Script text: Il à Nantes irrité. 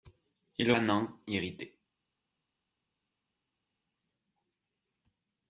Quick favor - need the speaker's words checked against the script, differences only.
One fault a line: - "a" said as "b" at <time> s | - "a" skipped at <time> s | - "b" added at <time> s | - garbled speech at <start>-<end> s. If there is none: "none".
none